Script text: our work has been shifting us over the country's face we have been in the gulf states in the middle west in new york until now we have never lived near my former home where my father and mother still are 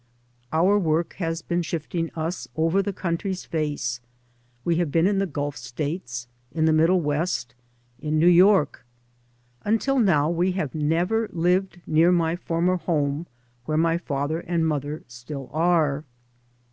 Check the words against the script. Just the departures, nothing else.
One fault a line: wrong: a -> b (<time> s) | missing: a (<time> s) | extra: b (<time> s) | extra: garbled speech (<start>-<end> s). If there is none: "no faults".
no faults